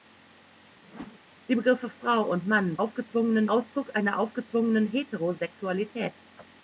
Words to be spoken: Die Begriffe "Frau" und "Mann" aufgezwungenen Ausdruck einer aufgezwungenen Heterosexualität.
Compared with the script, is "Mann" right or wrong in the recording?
right